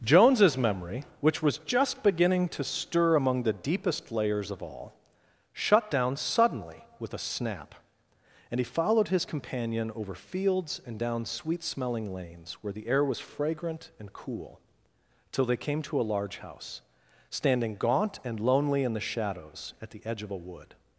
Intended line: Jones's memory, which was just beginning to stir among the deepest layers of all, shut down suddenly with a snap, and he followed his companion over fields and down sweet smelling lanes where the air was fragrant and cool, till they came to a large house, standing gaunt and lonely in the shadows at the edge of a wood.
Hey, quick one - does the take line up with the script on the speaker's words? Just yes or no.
yes